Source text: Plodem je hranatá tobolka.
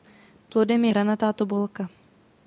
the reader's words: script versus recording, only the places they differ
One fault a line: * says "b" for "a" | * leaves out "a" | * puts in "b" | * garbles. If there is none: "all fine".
all fine